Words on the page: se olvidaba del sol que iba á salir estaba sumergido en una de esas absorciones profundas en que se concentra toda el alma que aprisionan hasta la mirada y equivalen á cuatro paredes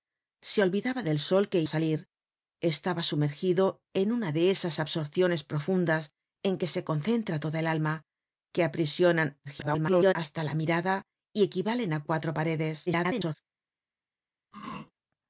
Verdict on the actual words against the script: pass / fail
fail